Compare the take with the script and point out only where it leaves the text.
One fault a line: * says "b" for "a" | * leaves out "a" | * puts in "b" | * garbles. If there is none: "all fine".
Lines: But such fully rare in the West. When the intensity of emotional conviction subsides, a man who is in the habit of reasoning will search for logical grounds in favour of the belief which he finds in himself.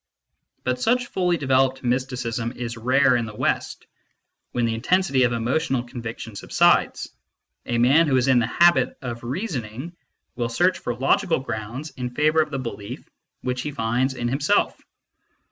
* puts in "developed mysticism is"